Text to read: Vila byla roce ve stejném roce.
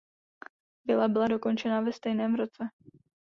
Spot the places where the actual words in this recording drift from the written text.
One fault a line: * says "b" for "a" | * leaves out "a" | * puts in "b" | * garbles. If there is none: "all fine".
* says "dokončena" for "roce"